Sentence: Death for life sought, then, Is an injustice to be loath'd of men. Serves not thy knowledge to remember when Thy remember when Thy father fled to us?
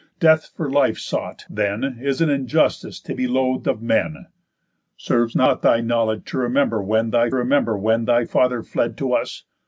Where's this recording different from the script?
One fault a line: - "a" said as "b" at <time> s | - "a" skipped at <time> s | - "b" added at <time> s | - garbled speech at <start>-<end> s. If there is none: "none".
none